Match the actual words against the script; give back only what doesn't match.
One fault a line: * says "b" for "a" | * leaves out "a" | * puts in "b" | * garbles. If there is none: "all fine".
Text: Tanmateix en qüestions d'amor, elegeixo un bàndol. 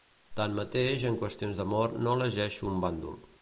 * puts in "no"